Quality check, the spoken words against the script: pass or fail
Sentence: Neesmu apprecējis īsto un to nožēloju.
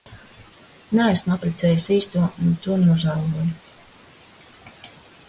pass